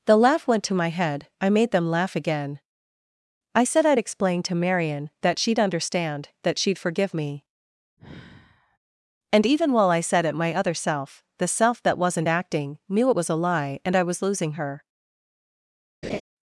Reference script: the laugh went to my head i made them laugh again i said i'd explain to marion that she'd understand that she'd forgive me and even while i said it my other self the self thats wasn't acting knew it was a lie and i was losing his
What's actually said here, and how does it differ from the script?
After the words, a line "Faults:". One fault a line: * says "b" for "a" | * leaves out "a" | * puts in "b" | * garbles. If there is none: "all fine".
the laugh went to my head i made them laugh again i said i'd explain to marion that she'd understand that she'd forgive me and even while i said it my other self the self that wasn't acting knew it was a lie and i was losing her
Faults:
* says "that" for "thats"
* says "her" for "his"